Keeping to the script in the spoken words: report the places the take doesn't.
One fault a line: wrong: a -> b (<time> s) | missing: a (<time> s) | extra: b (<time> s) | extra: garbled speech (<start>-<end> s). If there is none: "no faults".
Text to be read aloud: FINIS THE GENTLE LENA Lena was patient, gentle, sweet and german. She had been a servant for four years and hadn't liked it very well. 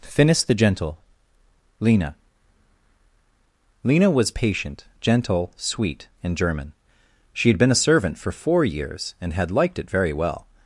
wrong: hadn't -> had (9.3 s)